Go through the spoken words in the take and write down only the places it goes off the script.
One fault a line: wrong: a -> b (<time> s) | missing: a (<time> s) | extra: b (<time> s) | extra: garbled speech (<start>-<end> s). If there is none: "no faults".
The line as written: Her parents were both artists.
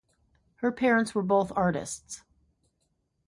no faults